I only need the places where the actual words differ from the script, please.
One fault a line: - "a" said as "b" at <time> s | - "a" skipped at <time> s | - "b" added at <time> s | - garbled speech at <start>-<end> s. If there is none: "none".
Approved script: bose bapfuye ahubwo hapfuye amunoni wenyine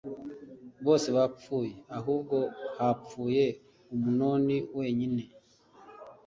none